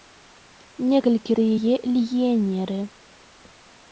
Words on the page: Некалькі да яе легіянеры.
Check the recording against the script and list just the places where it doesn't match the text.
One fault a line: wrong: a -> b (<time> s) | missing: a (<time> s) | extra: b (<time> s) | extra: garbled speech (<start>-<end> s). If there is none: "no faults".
no faults